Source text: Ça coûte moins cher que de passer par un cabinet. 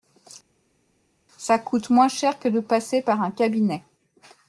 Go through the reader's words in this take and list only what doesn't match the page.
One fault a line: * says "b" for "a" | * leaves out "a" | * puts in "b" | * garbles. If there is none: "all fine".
all fine